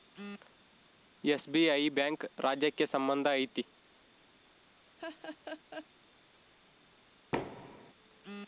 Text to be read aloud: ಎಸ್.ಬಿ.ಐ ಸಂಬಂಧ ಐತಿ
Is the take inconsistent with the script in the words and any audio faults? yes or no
yes